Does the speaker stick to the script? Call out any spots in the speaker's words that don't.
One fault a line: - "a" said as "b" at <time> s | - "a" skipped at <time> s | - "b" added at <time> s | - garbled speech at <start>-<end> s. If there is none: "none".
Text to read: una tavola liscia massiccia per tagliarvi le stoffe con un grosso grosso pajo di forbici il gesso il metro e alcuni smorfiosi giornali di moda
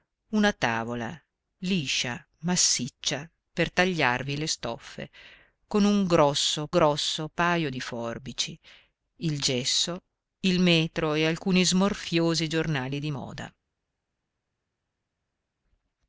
none